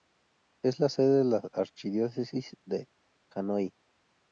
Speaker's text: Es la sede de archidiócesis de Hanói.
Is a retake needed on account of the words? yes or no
yes